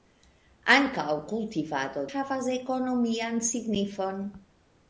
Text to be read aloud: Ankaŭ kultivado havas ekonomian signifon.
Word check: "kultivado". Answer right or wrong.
right